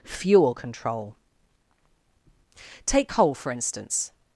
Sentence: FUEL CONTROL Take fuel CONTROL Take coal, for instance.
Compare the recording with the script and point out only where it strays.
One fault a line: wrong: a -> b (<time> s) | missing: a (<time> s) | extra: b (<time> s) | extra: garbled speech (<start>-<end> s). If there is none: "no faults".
missing: fuel CONTROL Take (3.1 s)